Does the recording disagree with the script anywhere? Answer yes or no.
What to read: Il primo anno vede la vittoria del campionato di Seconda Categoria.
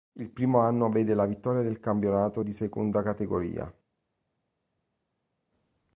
no